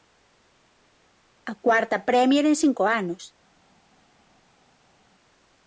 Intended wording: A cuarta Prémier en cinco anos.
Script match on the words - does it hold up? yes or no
yes